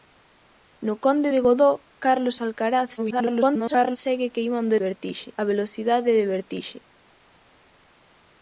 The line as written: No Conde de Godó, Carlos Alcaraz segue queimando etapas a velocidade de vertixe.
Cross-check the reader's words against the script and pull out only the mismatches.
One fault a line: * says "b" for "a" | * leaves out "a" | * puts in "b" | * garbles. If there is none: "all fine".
* garbles
* says "vertixe" for "etapas"